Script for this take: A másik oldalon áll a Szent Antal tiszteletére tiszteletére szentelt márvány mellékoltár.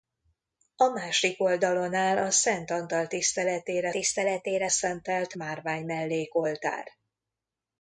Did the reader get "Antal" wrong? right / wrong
right